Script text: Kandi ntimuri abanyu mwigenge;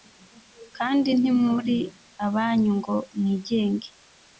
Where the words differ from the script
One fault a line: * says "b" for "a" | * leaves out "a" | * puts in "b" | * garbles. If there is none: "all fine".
* puts in "ngo"